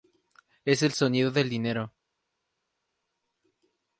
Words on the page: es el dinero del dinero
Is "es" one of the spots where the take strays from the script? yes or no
no